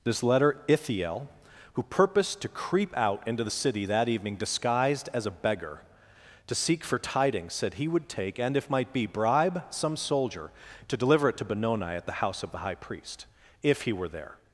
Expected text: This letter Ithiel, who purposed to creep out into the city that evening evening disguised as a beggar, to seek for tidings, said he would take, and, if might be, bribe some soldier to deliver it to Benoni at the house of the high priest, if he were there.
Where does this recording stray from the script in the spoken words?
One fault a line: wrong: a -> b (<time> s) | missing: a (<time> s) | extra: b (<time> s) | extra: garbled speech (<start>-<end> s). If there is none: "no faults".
missing: evening (4.4 s)